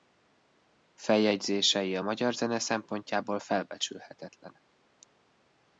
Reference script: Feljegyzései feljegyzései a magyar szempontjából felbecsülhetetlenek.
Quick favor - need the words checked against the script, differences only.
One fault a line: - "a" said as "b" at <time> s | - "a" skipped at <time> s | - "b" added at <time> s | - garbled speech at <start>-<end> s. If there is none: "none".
- "feljegyzései" skipped at 1.9 s
- "zene" added at 2.3 s